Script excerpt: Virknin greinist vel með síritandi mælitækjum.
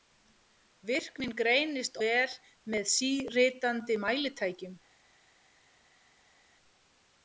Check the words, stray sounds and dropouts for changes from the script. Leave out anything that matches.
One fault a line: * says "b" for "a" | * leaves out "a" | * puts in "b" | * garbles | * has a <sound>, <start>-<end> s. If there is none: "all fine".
all fine